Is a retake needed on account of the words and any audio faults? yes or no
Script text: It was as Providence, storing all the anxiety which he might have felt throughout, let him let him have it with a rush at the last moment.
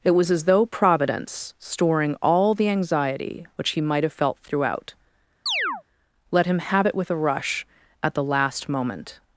yes